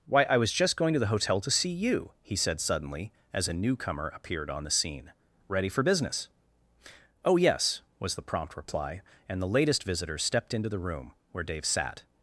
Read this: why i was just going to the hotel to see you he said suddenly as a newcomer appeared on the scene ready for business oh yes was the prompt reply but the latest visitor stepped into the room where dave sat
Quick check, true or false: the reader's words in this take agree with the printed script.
false